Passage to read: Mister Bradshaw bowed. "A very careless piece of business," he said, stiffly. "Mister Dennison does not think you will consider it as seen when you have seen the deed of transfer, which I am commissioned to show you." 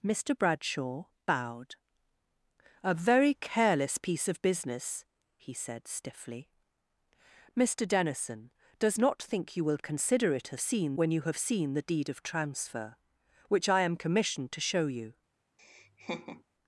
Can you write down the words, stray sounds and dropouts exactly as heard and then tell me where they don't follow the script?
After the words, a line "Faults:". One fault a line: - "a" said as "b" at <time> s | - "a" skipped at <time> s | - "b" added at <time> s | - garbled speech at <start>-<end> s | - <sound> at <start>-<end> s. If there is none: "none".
Mister Bradshaw bowed. "A very careless piece of business," he said, stiffly. "Mister Dennison does not think you will consider it as seen when you have seen the deed of transfer, which I am commissioned to show you."
Faults:
- laugh at 15.6-16.4 s